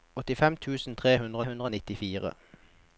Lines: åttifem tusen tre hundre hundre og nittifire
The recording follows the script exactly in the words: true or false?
true